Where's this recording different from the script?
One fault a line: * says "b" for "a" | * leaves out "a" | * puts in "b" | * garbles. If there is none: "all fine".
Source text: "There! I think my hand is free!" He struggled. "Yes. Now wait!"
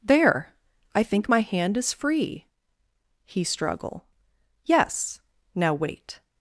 * says "struggle" for "struggled"